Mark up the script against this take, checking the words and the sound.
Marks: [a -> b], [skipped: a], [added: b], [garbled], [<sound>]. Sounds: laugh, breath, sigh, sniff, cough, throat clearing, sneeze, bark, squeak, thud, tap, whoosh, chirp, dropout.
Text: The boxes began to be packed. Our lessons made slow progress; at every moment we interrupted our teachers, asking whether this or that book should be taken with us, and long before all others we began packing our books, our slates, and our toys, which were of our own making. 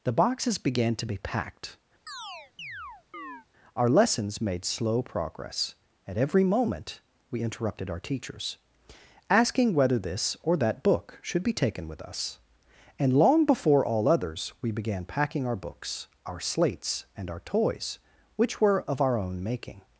The boxes began to be packed. [chirp] Our lessons made slow progress; at every moment we interrupted our teachers, asking whether this or that book should be taken with us, and long before all others we began packing our books, our slates, and our toys, which were of our own making.